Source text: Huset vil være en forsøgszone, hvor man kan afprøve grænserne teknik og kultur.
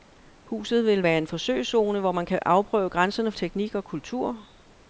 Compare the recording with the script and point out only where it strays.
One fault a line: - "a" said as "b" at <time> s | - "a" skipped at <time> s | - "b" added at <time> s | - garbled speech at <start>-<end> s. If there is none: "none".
none